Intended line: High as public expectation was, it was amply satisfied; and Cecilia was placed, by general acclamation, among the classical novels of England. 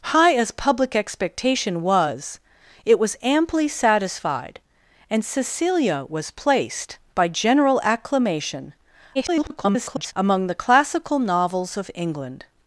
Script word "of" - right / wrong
right